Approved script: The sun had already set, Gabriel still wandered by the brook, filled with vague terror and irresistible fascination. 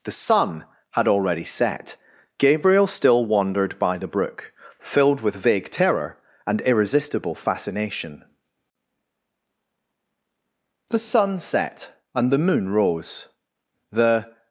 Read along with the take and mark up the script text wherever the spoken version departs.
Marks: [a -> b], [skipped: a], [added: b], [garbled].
The sun had already set, Gabriel still wandered by the brook, filled with vague terror and irresistible fascination. [added: The sun set and the moon rose the]